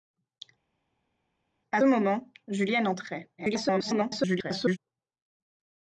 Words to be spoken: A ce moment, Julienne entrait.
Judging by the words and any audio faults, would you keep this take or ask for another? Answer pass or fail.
fail